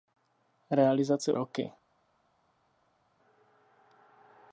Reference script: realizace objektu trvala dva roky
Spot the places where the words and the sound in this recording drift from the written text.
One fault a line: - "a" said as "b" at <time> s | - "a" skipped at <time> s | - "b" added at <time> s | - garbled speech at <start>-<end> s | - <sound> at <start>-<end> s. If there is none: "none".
- "objektu trvala dva" skipped at 1.3 s